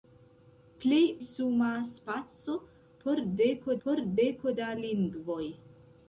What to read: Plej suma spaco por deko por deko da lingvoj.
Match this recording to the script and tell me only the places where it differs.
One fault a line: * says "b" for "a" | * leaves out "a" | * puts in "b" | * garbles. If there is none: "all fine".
all fine